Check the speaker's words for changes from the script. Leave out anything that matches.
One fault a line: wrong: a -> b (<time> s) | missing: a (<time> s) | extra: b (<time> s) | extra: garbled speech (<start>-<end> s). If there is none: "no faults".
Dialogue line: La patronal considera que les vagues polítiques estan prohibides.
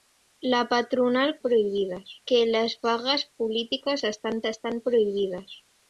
wrong: considera -> prohibides (1.4 s)
extra: estan (4.4 s)